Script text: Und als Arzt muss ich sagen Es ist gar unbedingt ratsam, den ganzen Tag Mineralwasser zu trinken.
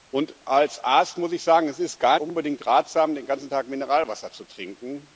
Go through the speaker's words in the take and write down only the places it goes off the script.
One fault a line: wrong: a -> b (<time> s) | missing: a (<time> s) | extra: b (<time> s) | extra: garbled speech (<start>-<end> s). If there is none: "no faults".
no faults